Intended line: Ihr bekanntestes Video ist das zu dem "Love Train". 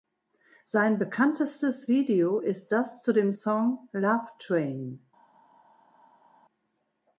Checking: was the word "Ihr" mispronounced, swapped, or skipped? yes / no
yes